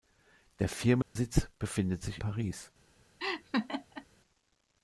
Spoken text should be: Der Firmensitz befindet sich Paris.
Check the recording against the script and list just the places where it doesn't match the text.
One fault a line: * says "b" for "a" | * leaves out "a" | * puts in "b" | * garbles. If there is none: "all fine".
all fine